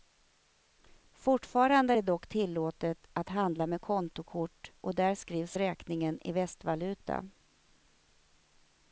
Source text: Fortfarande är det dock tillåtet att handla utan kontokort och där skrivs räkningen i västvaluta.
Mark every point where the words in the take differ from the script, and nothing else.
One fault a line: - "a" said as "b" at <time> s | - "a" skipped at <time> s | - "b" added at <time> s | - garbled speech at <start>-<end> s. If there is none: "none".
- "utan" said as "med" at 3.7 s